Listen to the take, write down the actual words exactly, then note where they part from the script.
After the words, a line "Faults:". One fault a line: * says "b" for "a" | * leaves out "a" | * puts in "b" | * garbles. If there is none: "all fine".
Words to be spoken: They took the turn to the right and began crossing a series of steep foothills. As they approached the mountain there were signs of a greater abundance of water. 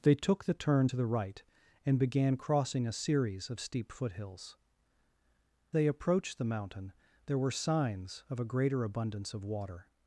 They took the turn to the right and began crossing a series of steep foothills. They approached the mountain there were signs of a greater abundance of water.
Faults:
* leaves out "As"